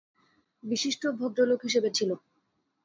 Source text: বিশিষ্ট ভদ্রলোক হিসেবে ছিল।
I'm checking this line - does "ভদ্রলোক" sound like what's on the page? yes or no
yes